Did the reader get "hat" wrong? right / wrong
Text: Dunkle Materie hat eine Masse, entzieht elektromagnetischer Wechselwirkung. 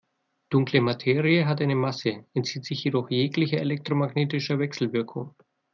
right